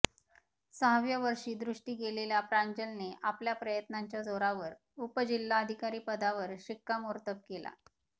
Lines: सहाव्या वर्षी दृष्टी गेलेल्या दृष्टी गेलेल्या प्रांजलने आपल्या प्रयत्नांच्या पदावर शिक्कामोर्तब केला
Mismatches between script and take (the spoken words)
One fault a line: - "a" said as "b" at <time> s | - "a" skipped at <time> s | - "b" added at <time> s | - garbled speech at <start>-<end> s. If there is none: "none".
- "दृष्टी गेलेल्या" skipped at 2.4 s
- "जोरावर उपजिल्हाधिकारी" added at 4.2 s